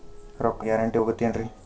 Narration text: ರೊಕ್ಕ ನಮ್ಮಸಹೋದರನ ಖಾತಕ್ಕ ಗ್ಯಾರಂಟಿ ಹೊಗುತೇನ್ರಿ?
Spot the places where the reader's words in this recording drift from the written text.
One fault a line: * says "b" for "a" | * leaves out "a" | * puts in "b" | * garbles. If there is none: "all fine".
* leaves out "ನಮ್ಮಸಹೋದರನ ಖಾತಕ್ಕ"